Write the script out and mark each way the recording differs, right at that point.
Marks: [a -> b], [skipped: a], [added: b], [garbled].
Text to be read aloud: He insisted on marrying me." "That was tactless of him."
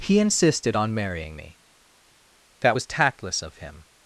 He insisted on marrying me." "That was tactless of him."